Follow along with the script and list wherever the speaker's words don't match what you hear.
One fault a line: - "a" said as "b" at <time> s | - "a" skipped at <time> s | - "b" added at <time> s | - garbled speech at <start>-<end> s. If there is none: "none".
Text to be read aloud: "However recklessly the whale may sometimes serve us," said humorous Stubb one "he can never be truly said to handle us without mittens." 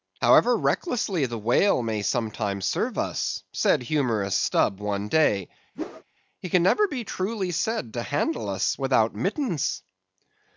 - "day" added at 5.1 s